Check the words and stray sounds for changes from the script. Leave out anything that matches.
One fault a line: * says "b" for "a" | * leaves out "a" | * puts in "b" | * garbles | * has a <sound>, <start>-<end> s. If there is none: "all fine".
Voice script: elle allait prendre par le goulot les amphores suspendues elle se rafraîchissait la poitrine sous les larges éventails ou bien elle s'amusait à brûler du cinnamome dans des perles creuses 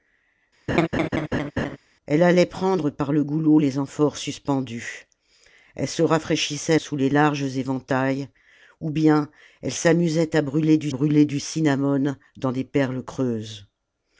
* has a laugh, 0.7-1.8 s
* leaves out "la poitrine"
* puts in "brûler du"